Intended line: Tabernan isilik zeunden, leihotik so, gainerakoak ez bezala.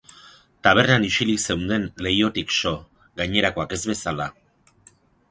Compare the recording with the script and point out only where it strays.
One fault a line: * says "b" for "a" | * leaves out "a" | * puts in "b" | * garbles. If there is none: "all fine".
all fine